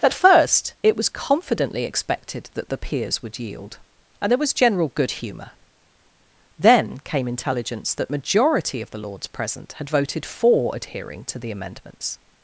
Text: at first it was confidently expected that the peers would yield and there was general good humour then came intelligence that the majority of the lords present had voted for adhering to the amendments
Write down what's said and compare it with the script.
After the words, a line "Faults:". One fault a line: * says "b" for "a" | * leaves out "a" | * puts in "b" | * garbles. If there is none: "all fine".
at first it was confidently expected that the peers would yield and there was general good humour then came intelligence that majority of the lords present had voted for adhering to the amendments
Faults:
* leaves out "the"